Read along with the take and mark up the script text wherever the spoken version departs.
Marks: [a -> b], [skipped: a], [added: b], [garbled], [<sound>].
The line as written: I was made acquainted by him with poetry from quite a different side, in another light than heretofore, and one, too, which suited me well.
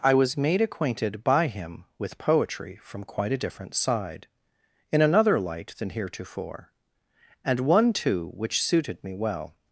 I was made acquainted by him with poetry from quite a different side, in another light than heretofore, and one, too, which suited me well.